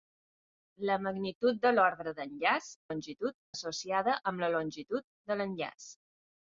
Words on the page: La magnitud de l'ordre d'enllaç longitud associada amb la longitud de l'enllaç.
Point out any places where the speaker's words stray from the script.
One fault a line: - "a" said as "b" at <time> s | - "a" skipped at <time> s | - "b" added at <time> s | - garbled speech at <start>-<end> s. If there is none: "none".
none